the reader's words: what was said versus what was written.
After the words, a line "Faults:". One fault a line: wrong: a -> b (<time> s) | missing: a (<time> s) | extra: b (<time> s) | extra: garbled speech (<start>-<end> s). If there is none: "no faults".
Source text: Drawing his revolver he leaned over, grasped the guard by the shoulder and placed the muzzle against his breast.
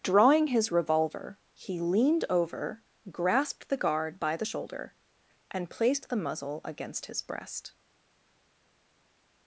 Drawing his revolver he leaned over, grasped the guard by the shoulder and placed the muzzle against his breast.
Faults:
no faults